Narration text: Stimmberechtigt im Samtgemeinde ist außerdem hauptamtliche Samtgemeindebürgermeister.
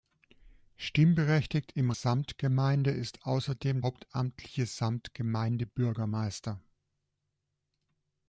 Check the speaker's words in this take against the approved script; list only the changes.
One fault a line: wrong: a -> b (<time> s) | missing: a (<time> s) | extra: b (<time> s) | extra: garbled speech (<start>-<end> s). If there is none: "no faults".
no faults